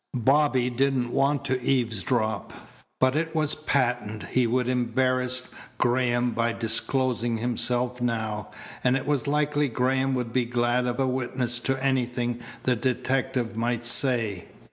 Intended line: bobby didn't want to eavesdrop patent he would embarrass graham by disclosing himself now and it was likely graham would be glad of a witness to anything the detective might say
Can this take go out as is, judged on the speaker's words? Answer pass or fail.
fail